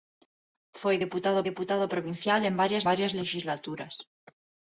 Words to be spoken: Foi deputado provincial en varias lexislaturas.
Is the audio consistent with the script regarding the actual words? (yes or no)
no